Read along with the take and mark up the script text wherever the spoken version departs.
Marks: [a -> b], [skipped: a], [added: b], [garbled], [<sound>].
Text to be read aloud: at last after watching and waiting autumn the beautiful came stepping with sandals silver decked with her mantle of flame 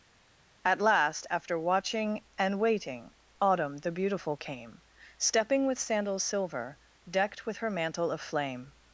at last after watching and waiting autumn the beautiful came stepping with sandals silver decked with her mantle of flame